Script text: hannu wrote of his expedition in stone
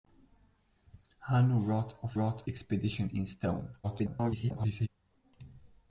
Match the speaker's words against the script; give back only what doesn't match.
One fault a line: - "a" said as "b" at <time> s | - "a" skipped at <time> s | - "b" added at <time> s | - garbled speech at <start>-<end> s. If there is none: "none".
- "his" said as "wrote" at 2.1 s
- garbled speech at 3.8-4.9 s